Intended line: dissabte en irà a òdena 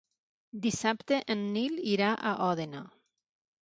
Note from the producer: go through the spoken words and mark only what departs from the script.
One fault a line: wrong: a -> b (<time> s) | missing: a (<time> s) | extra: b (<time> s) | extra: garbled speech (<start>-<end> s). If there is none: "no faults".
extra: nil (1.6 s)